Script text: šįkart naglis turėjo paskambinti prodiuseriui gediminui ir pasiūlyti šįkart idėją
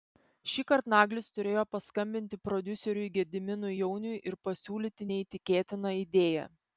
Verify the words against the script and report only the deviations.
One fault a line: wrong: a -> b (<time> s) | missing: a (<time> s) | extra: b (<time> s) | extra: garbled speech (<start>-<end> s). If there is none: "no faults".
extra: jauniui (3.7 s)
wrong: šįkart -> neįtikėtiną (5.1 s)